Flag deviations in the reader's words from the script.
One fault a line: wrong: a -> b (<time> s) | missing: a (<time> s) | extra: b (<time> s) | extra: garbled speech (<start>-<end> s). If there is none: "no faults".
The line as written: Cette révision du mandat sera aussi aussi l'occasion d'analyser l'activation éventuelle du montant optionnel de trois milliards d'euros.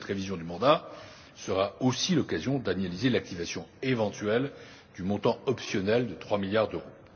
missing: aussi (2.1 s)